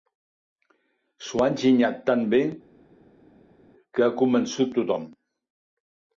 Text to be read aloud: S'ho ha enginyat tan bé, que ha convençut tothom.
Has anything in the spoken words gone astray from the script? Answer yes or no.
no